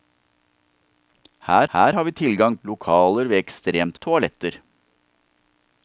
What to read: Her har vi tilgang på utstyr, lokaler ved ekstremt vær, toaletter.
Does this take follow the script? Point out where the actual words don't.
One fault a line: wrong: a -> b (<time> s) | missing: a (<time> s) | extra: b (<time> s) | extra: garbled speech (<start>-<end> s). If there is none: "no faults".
extra: her (1.7 s)
missing: på utstyr (2.6 s)
missing: vær (4.0 s)